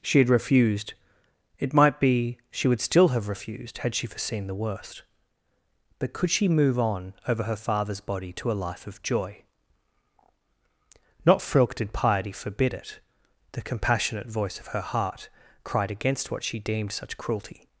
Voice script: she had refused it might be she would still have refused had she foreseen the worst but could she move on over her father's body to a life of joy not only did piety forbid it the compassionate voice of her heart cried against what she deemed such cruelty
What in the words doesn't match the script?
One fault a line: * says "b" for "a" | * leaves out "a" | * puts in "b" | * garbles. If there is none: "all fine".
* says "frilk" for "only"